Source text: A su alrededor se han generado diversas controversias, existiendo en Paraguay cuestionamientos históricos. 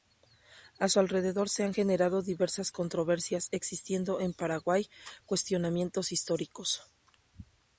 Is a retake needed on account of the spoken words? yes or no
no